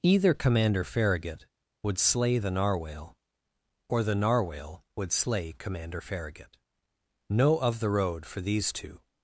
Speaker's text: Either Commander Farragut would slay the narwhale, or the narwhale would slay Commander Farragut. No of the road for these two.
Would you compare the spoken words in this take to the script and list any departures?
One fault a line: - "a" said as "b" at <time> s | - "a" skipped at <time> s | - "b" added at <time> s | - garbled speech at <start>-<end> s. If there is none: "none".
none